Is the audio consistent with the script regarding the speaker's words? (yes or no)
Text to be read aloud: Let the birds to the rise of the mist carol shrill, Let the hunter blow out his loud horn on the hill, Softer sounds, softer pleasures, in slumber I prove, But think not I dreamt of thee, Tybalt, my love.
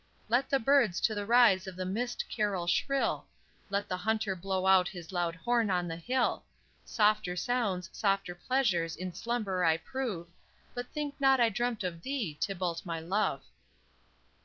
yes